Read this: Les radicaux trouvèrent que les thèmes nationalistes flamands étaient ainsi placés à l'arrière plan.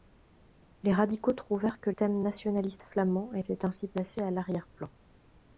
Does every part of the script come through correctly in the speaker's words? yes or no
no